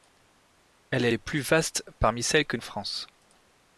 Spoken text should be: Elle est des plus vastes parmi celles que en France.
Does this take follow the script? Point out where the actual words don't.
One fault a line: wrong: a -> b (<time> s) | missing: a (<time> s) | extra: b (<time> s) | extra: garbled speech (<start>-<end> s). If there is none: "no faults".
no faults